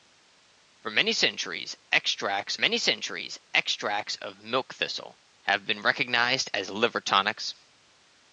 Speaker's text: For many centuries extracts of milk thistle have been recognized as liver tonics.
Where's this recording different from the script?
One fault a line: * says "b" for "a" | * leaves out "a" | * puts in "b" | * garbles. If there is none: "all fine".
* puts in "many centuries extracts"